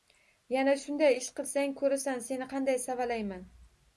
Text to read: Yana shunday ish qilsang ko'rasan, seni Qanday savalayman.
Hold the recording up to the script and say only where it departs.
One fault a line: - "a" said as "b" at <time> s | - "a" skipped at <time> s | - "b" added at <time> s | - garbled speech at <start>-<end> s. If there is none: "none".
none